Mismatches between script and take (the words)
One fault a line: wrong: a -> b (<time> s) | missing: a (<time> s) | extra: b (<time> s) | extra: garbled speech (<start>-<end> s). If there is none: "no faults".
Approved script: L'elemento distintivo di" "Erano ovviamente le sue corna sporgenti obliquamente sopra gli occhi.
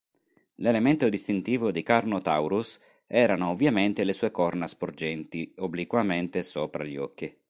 extra: Carnotaurus (1.8 s)